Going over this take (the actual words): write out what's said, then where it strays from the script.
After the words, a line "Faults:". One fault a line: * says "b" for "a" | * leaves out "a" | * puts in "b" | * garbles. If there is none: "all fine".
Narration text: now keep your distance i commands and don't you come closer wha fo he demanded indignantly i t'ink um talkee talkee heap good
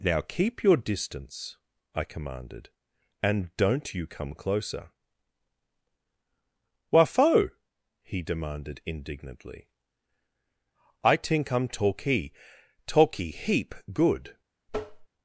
now keep your distance i commanded and don't you come closer wha fo he demanded indignantly i t'ink um talkee talkee heap good
Faults:
* says "commanded" for "commands"